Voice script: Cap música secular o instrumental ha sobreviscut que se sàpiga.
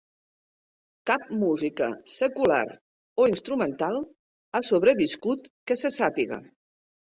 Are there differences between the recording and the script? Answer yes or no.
no